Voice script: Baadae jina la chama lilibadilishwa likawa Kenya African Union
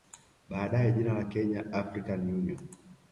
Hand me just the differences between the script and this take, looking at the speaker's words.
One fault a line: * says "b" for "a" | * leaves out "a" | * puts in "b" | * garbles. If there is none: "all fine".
* leaves out "chama lilibadilishwa likawa"